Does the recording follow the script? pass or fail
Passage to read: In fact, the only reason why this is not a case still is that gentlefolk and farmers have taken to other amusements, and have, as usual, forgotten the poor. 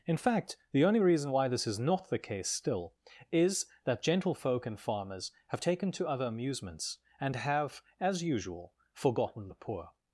fail